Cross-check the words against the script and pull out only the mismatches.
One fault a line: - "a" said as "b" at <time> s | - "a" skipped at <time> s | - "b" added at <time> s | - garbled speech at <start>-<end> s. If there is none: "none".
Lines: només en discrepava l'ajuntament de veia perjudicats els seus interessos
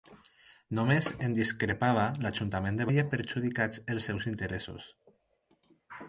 none